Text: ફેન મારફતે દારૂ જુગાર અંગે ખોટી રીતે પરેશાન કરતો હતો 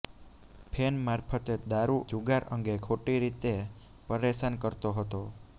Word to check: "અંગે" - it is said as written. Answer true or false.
true